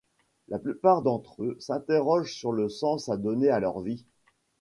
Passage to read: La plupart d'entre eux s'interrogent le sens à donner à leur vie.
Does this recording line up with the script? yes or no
no